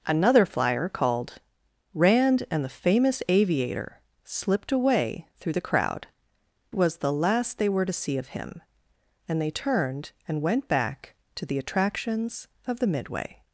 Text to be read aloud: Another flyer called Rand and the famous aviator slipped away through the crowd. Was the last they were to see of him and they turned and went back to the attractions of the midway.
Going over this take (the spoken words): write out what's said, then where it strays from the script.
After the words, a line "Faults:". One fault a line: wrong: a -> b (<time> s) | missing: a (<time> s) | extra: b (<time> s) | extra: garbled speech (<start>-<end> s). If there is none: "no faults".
Another flyer called Rand and the famous aviator slipped away through the crowd. Was the last they were to see of him and they turned and went back to the attractions of the midway.
Faults:
no faults